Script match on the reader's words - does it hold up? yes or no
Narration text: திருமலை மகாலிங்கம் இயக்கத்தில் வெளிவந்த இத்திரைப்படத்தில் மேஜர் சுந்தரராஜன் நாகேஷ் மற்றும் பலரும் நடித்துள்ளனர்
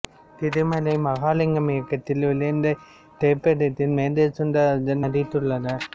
no